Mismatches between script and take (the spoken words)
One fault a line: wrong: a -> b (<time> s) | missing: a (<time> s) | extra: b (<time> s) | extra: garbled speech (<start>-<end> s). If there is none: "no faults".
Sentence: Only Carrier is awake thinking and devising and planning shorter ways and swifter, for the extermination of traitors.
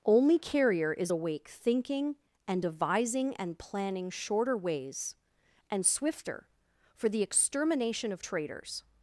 no faults